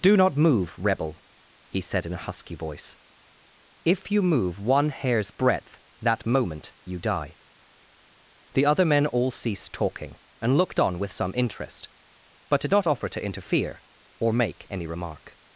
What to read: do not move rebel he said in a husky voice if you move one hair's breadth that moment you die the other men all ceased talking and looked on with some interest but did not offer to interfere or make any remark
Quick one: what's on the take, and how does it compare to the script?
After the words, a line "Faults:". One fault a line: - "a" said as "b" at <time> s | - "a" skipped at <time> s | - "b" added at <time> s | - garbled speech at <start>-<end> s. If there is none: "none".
do not move rebel he said in a husky voice if you move one hair's breadth that moment you die the other men all ceased talking and looked on with some interest but did not offer to interfere or make any remark
Faults:
none